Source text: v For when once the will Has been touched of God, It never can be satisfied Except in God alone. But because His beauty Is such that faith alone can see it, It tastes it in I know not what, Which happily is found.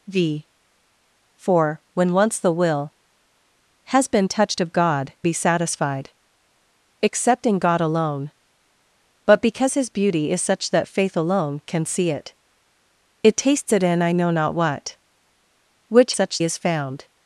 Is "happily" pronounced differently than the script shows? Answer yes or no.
yes